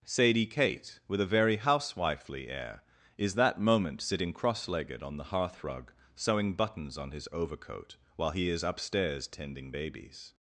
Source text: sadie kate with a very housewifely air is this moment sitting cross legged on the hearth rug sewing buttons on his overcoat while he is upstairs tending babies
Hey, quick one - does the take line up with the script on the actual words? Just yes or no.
no